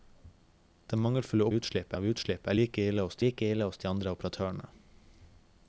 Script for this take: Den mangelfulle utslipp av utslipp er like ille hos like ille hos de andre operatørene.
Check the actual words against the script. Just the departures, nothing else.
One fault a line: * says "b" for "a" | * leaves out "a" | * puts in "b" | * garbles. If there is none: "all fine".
all fine